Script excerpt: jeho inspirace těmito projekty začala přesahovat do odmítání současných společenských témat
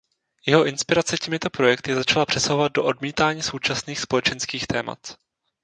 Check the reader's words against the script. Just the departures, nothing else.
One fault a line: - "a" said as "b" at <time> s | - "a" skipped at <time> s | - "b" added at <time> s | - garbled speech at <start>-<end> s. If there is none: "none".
none